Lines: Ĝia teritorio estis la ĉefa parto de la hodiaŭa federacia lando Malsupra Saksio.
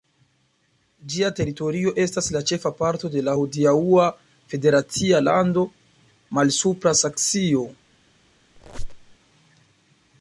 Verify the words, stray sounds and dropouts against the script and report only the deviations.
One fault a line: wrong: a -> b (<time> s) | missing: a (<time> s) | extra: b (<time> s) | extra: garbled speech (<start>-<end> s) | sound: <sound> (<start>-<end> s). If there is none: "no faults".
wrong: estis -> estas (2.0 s)
sound: squeak (8.6-9.2 s)